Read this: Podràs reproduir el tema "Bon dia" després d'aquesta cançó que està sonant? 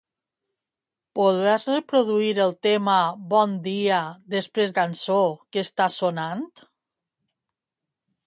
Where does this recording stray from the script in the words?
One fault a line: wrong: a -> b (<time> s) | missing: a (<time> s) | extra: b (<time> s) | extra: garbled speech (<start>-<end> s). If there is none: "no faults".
missing: d'aquesta (4.7 s)